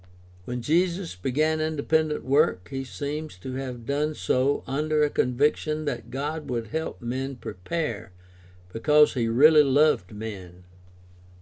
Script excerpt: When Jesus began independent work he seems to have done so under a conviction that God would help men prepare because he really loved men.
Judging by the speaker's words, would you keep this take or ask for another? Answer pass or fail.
pass